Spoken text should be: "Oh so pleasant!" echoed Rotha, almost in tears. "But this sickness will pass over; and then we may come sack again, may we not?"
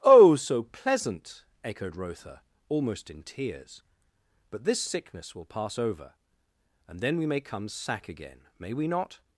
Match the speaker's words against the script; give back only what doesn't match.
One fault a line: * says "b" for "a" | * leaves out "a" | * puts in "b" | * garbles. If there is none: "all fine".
all fine